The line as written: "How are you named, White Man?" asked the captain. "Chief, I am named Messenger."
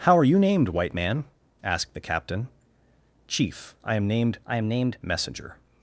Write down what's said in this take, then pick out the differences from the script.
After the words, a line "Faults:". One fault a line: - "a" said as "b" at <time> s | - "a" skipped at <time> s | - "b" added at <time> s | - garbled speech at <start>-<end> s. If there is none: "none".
"How are you named, White Man?" asked the captain. "Chief, I am named I am named Messenger."
Faults:
- "I am named" added at 4.5 s